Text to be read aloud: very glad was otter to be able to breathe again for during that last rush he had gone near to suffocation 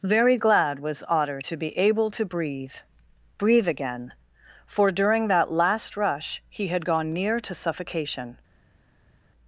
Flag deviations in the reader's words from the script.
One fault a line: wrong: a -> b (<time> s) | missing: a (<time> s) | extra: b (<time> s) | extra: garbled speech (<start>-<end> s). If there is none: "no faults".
extra: breathe (3.4 s)